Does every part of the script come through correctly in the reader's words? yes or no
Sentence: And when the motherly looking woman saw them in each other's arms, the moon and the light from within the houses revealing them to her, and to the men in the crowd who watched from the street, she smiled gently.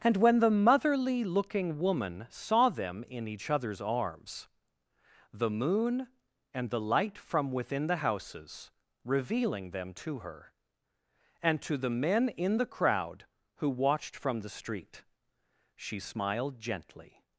yes